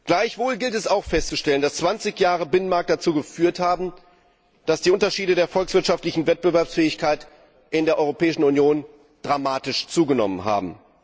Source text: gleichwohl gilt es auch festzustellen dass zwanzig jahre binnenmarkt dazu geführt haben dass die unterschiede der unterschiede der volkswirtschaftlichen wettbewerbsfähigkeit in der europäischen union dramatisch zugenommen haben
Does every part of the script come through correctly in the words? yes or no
no